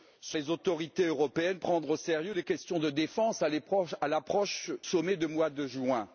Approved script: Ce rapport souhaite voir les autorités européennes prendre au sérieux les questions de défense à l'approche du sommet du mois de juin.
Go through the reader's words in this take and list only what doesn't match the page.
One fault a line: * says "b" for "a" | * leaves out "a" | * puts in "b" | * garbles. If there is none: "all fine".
* leaves out "rapport souhaite voir"
* leaves out "du"